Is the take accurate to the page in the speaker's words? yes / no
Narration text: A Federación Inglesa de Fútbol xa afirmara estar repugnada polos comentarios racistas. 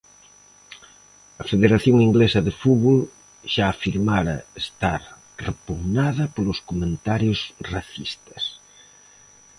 yes